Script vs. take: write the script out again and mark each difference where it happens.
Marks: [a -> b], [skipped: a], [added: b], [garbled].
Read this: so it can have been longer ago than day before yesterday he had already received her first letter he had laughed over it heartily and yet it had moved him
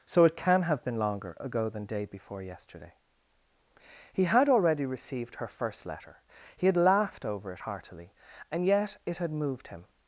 so it can have been longer ago than day before yesterday he had already received her first letter he had laughed over it heartily and yet it had moved him